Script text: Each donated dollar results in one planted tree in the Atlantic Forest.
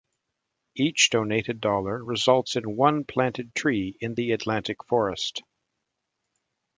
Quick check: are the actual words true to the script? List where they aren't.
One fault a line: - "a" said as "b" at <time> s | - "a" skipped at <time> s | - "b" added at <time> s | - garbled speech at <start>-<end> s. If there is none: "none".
none